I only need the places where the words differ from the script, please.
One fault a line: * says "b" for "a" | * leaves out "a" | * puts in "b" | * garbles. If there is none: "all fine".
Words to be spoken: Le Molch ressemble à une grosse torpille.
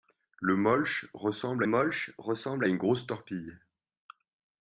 * puts in "Molch ressemble"